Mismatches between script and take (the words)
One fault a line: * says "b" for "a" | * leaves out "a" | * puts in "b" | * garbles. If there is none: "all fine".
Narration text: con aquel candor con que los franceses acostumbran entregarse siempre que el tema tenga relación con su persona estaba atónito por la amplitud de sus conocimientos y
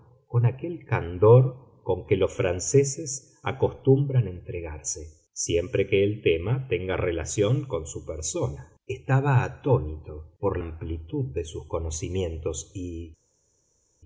* leaves out "la"